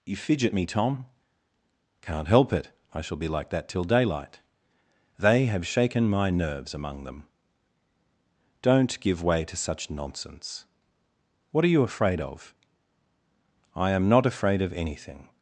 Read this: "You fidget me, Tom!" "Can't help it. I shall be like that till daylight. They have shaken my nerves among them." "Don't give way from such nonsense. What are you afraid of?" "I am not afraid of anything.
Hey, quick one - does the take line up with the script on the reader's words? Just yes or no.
no